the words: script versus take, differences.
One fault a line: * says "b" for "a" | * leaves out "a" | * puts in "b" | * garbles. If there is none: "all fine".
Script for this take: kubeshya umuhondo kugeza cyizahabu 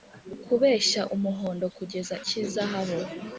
all fine